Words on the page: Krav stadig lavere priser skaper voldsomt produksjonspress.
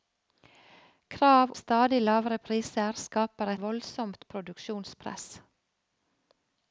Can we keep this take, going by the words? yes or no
yes